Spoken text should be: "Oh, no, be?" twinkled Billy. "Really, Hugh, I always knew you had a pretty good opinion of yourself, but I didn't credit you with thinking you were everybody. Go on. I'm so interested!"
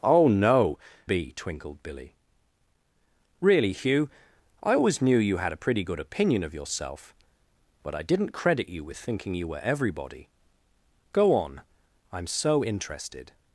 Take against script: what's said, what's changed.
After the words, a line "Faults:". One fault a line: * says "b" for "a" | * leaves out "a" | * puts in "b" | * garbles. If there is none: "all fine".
"Oh, no, be?" twinkled Billy. "Really, Hugh, I always knew you had a pretty good opinion of yourself, but I didn't credit you with thinking you were everybody. Go on. I'm so interested!"
Faults:
all fine